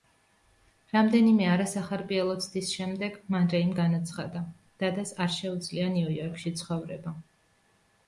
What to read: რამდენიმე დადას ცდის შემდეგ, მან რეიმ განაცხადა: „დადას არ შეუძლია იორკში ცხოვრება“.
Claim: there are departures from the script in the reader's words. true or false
true